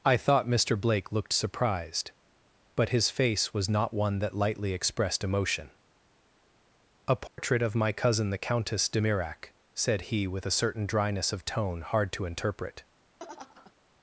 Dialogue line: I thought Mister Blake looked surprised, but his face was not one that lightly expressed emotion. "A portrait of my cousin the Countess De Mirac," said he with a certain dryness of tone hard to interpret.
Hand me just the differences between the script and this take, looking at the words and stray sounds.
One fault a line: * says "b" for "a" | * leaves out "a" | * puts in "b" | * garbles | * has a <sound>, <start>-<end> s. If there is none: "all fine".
* has a dropout, 7.3-7.4 s
* has a laugh, 13.2-13.7 s